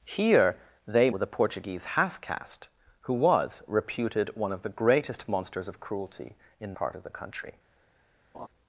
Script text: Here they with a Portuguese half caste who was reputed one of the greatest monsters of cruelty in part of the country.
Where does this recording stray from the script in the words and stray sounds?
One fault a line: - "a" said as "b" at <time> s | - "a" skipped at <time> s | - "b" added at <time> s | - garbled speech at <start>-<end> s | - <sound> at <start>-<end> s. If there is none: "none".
- laugh at 8.3-8.5 s